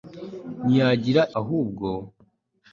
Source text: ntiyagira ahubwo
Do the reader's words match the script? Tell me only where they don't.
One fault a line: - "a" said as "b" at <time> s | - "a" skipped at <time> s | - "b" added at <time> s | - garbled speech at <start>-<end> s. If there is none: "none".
none